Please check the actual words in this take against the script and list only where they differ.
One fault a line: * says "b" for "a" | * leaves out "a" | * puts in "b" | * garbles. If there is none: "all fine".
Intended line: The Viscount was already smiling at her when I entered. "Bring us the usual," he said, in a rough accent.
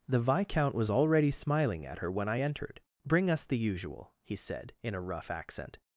all fine